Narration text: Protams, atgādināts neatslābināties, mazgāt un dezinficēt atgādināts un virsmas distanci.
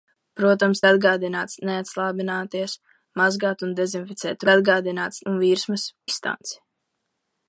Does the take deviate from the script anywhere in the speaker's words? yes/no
no